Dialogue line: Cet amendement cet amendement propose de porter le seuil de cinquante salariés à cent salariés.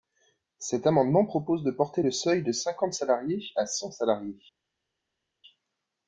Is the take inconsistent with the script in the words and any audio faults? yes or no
yes